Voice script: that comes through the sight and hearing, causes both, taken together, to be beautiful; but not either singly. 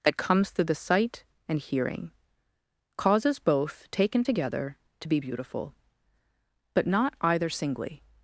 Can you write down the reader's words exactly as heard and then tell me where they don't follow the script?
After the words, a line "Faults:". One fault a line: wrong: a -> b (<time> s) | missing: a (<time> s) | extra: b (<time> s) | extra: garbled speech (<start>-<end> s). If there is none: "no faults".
that comes through the sight and hearing, causes both, taken together, to be beautiful; but not either singly.
Faults:
no faults